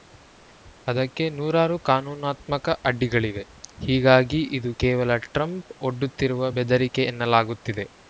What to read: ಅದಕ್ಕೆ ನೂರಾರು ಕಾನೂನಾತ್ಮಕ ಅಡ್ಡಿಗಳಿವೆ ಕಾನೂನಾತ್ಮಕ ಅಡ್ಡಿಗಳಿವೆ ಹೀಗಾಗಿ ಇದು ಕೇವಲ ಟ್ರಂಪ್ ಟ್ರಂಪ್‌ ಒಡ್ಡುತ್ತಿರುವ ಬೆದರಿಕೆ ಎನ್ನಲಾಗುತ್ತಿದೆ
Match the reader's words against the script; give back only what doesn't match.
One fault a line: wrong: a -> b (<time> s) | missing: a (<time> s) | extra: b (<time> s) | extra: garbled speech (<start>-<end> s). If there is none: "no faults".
missing: ಕಾನೂನಾತ್ಮಕ ಅಡ್ಡಿಗಳಿವೆ (3.4 s)
missing: ಟ್ರಂಪ್ (5.6 s)